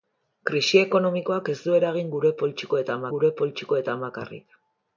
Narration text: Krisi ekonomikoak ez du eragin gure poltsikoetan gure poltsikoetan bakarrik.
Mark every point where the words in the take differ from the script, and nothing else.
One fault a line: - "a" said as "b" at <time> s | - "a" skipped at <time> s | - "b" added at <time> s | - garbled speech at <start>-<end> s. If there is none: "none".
none